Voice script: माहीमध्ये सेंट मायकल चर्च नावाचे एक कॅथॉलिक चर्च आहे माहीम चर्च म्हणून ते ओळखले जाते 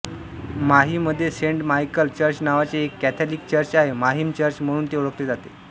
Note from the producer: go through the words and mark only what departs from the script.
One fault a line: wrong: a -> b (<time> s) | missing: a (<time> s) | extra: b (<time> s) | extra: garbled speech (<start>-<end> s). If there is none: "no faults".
no faults